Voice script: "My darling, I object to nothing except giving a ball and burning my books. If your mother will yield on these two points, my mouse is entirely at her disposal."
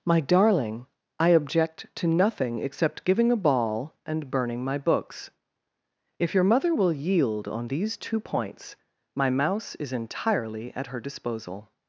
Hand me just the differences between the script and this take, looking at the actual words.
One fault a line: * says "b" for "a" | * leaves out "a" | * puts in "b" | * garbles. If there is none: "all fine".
all fine